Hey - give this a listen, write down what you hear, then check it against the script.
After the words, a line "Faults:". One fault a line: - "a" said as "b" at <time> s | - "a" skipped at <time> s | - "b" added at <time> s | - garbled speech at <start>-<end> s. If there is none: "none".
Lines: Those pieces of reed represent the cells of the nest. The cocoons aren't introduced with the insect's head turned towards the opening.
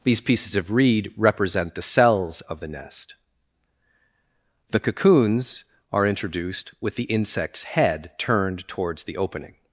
These pieces of reed represent the cells of the nest. The cocoons are introduced with the insect's head turned towards the opening.
Faults:
- "Those" said as "These" at 0.0 s
- "aren't" said as "are" at 5.9 s